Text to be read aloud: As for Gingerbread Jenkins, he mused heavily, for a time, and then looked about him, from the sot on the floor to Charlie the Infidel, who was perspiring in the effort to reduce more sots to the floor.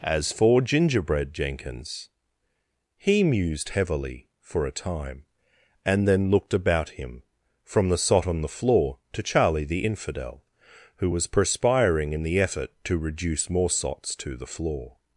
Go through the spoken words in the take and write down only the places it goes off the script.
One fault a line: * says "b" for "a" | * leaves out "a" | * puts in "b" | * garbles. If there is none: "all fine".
all fine